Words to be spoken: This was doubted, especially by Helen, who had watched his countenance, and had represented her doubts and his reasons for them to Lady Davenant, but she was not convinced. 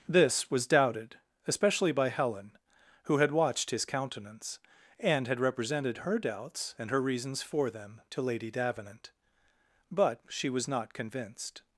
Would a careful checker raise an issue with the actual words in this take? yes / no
yes